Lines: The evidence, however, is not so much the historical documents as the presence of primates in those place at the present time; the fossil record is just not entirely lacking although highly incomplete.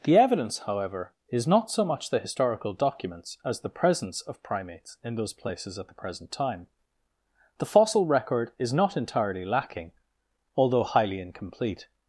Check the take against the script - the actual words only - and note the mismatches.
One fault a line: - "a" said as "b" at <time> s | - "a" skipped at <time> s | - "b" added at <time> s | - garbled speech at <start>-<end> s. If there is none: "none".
- "place" said as "places" at 5.3 s
- "just" skipped at 8.7 s